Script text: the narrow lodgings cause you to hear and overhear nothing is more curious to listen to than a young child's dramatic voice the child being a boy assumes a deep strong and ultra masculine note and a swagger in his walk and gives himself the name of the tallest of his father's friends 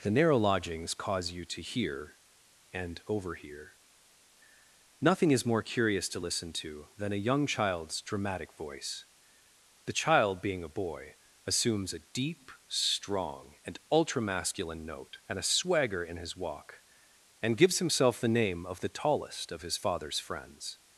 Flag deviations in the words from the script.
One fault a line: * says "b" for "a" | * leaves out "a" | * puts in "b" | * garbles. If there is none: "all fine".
all fine